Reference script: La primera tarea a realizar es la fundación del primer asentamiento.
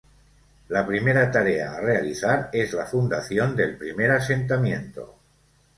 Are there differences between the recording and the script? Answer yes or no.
no